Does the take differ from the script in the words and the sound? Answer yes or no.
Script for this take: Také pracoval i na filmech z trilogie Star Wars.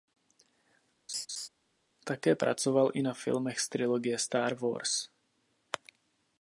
yes